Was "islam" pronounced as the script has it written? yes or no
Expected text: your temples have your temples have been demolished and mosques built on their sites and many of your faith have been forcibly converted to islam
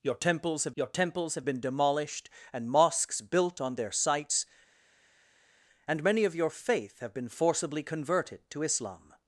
yes